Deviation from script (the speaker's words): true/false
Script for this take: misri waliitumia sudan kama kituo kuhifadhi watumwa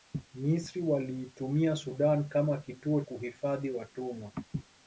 false